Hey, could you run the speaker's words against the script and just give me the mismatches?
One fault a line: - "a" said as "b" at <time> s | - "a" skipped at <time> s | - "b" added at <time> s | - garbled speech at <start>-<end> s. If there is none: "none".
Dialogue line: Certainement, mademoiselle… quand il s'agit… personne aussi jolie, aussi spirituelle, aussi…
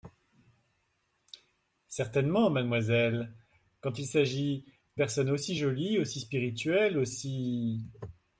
none